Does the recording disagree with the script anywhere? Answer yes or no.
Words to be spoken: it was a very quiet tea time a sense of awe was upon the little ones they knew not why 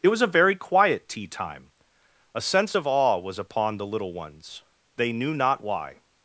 no